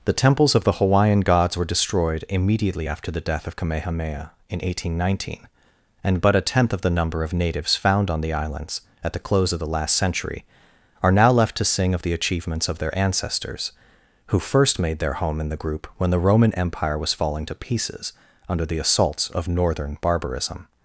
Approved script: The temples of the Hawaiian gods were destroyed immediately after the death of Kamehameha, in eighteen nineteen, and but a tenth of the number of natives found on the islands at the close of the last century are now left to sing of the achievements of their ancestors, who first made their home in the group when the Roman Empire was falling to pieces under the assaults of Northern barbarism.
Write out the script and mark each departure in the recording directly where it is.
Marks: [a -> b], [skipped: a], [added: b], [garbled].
The temples of the Hawaiian gods were destroyed immediately after the death of Kamehameha, in eighteen nineteen, and but a tenth of the number of natives found on the islands at the close of the last century are now left to sing of the achievements of their ancestors, who first made their home in the group when the Roman Empire was falling to pieces under the assaults of Northern barbarism.